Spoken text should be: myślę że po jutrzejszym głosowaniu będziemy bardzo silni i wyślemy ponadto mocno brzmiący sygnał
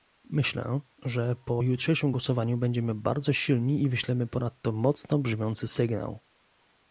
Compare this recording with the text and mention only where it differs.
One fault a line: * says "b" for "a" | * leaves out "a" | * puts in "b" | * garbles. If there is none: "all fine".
all fine